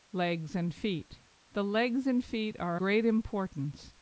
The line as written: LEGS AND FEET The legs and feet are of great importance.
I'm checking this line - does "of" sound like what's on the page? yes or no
no